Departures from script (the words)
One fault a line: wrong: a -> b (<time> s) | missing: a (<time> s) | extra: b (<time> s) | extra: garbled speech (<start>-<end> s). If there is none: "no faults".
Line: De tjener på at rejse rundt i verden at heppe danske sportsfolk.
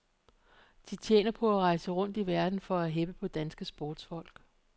extra: for (2.6 s)
extra: på (3.1 s)